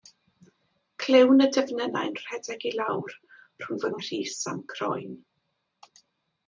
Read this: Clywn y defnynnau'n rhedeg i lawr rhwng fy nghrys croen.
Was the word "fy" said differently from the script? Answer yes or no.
no